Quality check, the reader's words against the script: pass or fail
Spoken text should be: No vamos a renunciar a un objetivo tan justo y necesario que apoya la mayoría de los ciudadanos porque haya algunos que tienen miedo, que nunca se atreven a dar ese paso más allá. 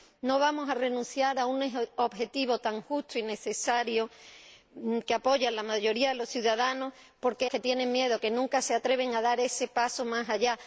fail